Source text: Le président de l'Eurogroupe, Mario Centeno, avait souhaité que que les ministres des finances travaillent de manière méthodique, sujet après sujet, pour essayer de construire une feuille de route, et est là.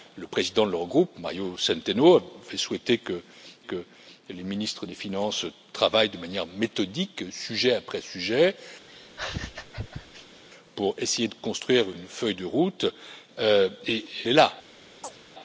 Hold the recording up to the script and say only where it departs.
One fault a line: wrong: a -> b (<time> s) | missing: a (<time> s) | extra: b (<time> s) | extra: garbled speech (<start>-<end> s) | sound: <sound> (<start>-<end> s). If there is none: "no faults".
sound: laugh (8.9-10.4 s)
sound: chirp (15.0-15.2 s)